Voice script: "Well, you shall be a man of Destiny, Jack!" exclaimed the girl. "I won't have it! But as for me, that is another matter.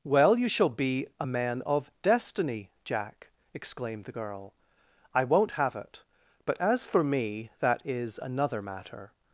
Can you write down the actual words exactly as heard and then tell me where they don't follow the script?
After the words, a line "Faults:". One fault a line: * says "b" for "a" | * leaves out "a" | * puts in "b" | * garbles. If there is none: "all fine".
"Well, you shall be a man of Destiny, Jack!" exclaimed the girl. "I won't have it! But as for me, that is another matter.
Faults:
all fine